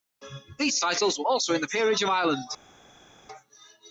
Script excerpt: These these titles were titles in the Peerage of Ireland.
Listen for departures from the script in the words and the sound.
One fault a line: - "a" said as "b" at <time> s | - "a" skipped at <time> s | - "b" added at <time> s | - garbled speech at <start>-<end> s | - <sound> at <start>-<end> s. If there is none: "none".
- "these" skipped at 0.8 s
- "titles" said as "also" at 1.2 s